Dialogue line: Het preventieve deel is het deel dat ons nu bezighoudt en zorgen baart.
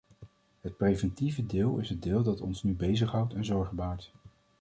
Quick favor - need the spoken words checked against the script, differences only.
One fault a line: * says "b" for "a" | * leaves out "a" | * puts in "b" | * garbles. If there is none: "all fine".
all fine